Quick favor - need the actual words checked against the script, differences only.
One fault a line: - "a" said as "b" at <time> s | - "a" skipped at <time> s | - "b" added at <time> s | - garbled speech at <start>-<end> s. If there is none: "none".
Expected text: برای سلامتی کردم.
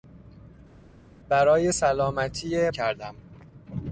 none